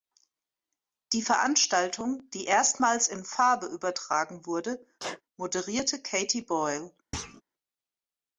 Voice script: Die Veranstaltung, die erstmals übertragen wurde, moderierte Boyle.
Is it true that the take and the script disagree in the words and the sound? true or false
true